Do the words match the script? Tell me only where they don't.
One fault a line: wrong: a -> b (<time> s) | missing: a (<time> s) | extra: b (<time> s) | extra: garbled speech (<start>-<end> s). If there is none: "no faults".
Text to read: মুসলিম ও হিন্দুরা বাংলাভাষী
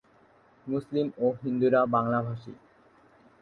no faults